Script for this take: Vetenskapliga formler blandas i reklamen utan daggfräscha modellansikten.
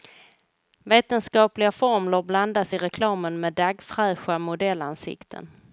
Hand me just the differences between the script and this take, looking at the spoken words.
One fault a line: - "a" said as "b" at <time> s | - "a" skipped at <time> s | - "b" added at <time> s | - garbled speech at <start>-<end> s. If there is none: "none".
- "utan" said as "med" at 3.4 s